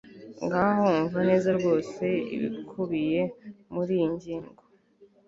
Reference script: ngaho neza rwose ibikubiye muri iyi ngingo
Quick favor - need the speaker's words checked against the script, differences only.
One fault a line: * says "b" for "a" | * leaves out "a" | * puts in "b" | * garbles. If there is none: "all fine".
* puts in "umva"